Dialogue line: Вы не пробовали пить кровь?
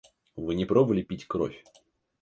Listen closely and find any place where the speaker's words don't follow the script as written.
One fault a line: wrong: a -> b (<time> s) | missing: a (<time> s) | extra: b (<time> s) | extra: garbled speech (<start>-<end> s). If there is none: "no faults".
no faults